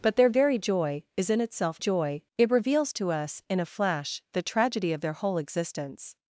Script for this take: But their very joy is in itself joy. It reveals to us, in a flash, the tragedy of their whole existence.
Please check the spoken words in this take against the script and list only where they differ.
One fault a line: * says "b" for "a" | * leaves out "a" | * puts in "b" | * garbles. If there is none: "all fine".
all fine